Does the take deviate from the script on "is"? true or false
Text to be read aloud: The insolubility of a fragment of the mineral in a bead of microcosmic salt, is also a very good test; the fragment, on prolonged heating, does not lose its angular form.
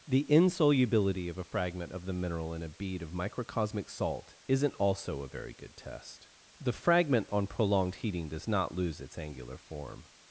true